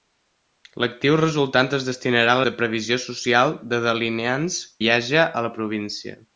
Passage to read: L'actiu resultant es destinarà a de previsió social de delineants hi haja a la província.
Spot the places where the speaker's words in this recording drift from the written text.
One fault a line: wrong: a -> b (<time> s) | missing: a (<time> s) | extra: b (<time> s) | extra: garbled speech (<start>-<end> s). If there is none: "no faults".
no faults